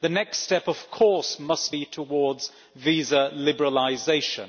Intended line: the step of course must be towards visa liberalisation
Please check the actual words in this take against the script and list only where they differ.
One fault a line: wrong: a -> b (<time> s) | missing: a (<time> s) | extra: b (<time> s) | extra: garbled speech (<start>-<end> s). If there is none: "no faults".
extra: next (0.1 s)